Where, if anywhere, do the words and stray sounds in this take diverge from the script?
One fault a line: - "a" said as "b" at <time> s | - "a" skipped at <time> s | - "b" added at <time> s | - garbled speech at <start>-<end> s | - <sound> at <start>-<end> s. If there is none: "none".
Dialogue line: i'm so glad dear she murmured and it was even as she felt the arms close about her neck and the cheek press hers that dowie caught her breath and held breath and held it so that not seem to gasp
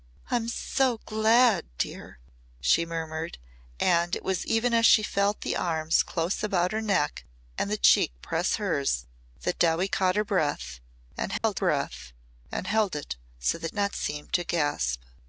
- dropout at 11.4-11.4 s